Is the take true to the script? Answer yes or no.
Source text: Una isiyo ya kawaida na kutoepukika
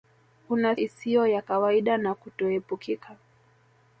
yes